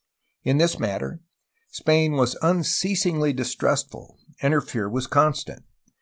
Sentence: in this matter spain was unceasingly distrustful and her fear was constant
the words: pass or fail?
pass